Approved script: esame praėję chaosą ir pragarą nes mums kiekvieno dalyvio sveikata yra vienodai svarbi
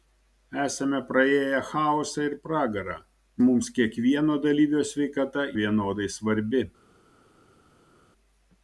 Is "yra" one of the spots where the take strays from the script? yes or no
yes